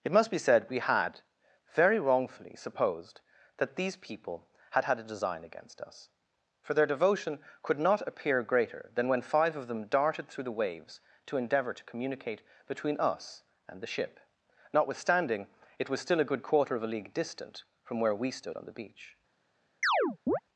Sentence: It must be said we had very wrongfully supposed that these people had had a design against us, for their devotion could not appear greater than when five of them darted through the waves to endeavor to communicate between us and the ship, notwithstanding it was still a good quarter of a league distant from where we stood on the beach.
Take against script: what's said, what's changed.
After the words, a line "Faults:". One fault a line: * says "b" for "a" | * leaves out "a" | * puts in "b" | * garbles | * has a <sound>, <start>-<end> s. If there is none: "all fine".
It must be said we had very wrongfully supposed that these people had had a design against us, for their devotion could not appear greater than when five of them darted through the waves to endeavor to communicate between us and the ship, notwithstanding it was still a good quarter of a league distant from where we stood on the beach.
Faults:
* has a chirp, 19.8-20.4 s